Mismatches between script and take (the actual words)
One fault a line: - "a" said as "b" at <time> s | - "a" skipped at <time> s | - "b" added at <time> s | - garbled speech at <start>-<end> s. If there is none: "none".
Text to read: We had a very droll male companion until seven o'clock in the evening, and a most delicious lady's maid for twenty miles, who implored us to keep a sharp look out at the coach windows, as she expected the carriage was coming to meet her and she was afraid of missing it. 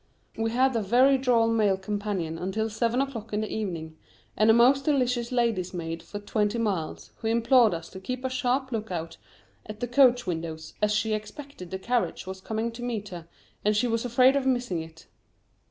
none